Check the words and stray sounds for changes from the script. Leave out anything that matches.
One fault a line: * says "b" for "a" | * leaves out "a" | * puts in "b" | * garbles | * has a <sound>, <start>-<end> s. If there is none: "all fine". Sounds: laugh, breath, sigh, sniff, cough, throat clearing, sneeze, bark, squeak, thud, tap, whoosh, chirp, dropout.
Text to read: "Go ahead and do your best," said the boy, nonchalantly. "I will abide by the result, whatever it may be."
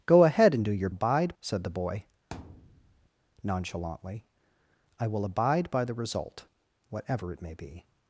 * says "abide" for "best"
* has a thud, 2.3-3.1 s